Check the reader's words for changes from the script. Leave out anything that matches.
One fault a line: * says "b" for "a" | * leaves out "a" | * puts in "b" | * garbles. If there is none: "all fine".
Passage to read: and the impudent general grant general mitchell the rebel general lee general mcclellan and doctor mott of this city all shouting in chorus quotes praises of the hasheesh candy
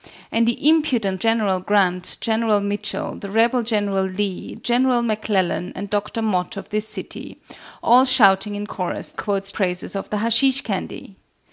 all fine